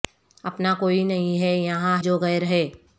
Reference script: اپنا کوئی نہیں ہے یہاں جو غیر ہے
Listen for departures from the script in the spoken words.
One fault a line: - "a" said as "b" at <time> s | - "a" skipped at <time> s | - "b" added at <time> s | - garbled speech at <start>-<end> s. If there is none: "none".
none